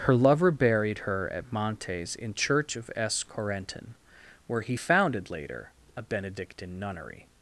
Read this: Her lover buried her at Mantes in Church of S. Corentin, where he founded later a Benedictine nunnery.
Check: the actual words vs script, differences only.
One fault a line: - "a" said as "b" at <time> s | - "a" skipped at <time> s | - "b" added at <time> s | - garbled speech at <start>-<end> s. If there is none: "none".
none